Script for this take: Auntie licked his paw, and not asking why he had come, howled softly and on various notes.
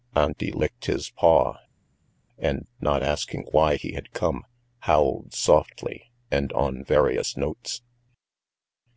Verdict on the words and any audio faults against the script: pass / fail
pass